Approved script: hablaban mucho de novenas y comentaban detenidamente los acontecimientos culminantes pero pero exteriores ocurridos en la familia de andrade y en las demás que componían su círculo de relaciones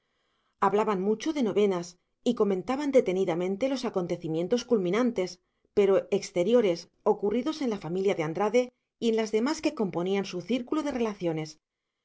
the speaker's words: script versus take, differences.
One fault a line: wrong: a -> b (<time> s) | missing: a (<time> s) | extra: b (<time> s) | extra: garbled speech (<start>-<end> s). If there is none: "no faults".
missing: pero (6.1 s)